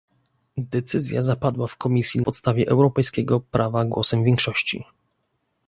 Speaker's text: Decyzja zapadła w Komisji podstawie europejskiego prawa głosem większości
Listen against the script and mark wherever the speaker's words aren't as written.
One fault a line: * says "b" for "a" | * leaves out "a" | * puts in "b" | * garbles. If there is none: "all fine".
all fine